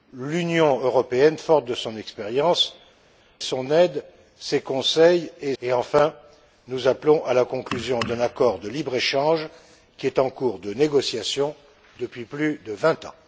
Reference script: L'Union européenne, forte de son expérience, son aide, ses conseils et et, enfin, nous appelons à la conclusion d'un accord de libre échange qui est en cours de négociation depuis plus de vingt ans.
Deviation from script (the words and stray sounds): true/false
false